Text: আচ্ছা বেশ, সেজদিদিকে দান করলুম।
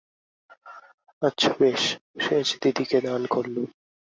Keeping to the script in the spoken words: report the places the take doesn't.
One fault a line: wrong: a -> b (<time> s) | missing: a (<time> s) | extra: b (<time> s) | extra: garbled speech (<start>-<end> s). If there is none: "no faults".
no faults